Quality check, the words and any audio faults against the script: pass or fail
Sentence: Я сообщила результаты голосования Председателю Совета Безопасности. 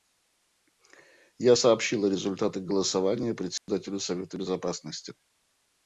fail